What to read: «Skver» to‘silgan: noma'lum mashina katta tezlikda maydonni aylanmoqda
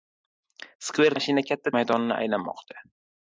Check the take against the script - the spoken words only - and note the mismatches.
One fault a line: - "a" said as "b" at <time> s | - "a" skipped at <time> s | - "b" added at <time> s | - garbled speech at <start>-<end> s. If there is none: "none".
- "to‘silgan noma'lum" skipped at 1.1 s
- "tezlikda" skipped at 1.7 s